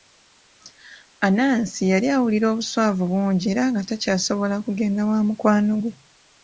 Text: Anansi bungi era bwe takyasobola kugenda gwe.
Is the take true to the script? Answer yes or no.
no